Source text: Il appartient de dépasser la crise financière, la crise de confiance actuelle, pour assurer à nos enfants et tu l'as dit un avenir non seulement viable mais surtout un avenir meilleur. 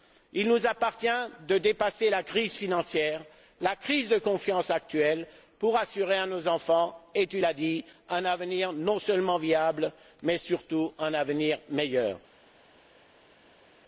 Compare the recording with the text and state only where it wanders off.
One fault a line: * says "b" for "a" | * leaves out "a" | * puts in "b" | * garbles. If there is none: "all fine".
* puts in "nous"